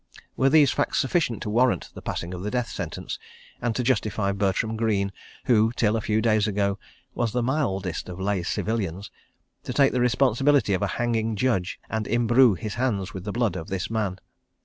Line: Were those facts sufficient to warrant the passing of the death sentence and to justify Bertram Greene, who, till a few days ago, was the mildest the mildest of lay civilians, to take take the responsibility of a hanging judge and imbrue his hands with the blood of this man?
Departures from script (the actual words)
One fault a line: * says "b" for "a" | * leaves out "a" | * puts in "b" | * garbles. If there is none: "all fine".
* says "these" for "those"
* leaves out "the mildest"
* leaves out "take"